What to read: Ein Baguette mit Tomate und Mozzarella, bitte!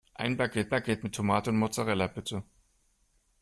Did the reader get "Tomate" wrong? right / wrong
right